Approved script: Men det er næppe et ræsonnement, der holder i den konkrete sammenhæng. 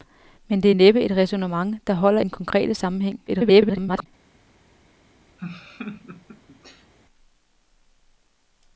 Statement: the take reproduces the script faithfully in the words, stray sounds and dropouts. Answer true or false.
false